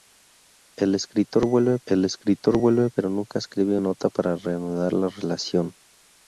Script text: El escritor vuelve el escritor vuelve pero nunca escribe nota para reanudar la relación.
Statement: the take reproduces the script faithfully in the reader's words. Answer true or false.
true